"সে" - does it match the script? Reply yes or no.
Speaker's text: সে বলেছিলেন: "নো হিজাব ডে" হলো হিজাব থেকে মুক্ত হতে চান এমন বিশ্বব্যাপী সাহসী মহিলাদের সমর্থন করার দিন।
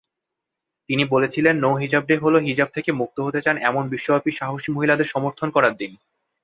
no